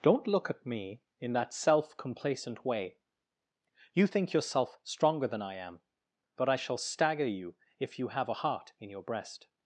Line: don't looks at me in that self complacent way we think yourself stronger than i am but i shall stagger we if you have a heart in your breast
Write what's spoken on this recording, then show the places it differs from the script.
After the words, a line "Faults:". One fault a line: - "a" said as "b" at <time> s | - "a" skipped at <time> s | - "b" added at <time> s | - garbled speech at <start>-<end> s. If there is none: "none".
don't look at me in that self complacent way you think yourself stronger than i am but i shall stagger you if you have a heart in your breast
Faults:
- "looks" said as "look" at 0.3 s
- "we" said as "you" at 3.9 s
- "we" said as "you" at 7.3 s